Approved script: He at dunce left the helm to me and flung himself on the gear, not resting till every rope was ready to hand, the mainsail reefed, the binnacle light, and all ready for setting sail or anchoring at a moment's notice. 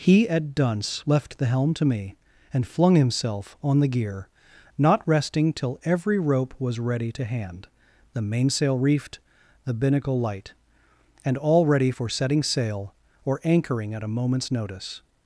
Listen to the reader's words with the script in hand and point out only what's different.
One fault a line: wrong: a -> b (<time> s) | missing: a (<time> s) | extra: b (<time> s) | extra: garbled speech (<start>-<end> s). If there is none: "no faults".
no faults